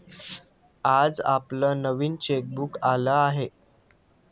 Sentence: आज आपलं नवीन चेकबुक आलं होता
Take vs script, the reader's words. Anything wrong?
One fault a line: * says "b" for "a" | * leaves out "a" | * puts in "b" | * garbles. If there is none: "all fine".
* says "आहे" for "होता"